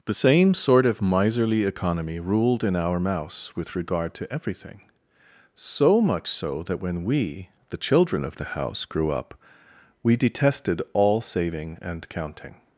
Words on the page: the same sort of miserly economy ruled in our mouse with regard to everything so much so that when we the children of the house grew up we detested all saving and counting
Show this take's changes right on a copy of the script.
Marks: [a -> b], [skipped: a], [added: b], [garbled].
the same sort of miserly economy ruled in our mouse with regard to everything so much so that when we the children of the house grew up we detested all saving and counting